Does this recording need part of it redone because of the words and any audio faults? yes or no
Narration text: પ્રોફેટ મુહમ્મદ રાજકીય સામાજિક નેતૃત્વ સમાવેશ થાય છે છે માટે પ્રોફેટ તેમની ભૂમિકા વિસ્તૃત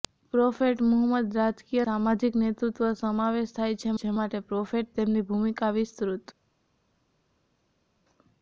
no